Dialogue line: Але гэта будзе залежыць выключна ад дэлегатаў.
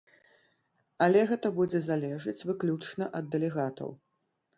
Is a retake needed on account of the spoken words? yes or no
no